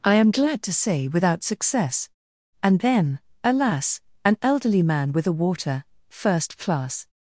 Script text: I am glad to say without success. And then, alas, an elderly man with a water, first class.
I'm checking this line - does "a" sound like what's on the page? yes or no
yes